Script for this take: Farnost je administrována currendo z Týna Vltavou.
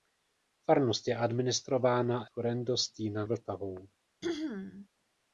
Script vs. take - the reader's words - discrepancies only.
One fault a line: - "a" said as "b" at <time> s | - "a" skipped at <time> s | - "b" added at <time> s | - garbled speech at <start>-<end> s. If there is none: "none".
none